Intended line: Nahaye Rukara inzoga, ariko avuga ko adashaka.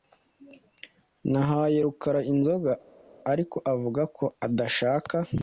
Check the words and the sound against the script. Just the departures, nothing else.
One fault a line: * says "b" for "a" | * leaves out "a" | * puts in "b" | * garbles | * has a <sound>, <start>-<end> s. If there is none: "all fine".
all fine